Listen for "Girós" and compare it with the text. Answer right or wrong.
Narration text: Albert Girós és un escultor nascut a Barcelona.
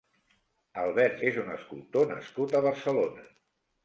wrong